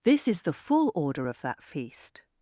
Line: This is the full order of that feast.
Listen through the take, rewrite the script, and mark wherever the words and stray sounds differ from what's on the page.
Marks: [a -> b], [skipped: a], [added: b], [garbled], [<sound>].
This is the full order of that feast.